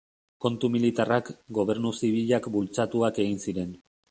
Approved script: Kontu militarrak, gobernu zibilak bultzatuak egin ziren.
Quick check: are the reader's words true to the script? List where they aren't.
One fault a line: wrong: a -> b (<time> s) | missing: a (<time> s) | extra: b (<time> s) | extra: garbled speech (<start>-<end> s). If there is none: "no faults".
no faults